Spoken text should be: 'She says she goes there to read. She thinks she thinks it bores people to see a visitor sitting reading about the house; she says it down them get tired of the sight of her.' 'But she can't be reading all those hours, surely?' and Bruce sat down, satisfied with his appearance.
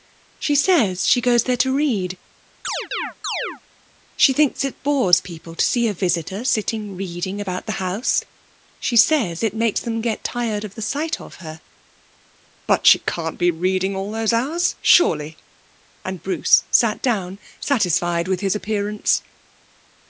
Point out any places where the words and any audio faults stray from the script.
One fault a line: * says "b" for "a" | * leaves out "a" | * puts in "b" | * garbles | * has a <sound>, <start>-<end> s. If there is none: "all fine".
* has a chirp, 2.6-3.6 s
* leaves out "she thinks"
* says "makes" for "down"